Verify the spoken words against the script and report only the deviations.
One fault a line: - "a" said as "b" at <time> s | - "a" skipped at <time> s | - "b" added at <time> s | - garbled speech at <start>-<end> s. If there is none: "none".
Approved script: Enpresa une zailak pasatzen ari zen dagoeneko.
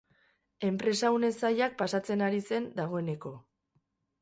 none